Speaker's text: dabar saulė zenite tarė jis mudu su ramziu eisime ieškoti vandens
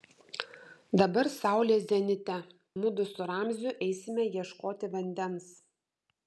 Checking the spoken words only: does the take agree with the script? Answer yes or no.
no